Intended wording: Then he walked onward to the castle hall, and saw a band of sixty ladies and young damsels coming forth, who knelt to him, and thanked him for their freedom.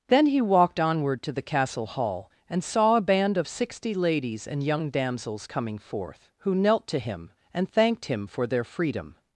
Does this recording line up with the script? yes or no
yes